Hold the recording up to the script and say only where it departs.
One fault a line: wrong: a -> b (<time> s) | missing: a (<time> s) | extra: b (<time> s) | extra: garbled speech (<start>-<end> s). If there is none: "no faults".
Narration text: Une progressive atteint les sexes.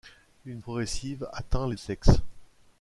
no faults